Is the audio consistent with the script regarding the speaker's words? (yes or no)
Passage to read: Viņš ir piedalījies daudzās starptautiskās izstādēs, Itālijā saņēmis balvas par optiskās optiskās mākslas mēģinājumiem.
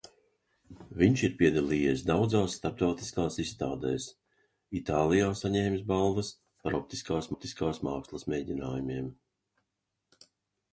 yes